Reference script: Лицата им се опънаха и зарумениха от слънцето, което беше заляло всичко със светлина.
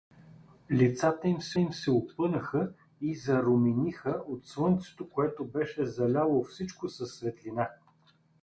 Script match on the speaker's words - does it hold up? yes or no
no